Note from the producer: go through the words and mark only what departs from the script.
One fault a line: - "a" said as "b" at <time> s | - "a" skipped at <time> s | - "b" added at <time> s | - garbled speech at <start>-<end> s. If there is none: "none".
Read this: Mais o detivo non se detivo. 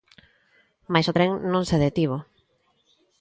- "detivo" said as "tren" at 1.2 s